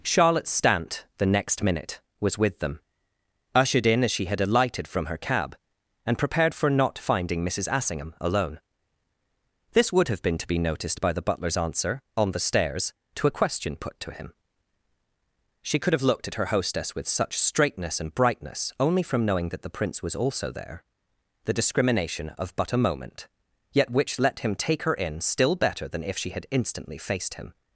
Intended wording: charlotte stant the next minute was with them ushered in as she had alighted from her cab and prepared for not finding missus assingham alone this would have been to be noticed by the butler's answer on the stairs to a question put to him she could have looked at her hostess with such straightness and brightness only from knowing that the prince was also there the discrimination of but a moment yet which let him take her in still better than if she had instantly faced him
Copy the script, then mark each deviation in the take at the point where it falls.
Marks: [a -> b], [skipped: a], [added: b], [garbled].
charlotte stant the next minute was with them ushered in as she had alighted from her cab and prepared for not finding missus assingham alone this would have been to be noticed by the butler's answer on the stairs to a question put to him she could have looked at her hostess with such straightness and brightness only from knowing that the prince was also there the discrimination of but a moment yet which let him take her in still better than if she had instantly faced him